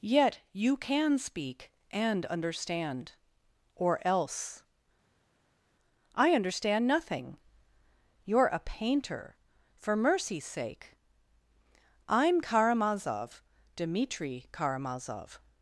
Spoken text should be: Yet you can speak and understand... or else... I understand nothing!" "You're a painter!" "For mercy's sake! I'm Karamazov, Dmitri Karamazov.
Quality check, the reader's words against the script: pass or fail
pass